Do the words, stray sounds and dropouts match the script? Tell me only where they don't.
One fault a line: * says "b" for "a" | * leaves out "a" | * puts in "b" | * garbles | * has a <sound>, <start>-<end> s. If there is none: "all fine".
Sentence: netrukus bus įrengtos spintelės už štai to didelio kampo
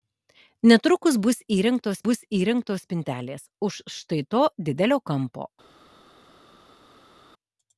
* puts in "bus įrengtos"